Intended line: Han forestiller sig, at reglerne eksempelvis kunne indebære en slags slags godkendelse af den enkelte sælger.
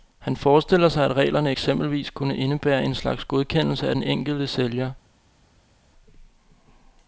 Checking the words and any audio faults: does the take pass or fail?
fail